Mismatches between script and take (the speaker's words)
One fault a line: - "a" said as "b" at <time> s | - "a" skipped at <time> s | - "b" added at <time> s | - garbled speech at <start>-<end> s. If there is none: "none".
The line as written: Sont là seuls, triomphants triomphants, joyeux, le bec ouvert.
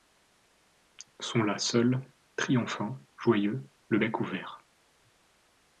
- "triomphants" skipped at 3.0 s